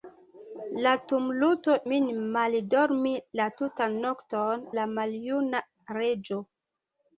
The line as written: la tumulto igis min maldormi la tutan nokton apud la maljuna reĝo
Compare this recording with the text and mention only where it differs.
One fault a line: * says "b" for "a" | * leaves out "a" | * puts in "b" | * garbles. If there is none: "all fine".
* leaves out "igis"
* leaves out "apud"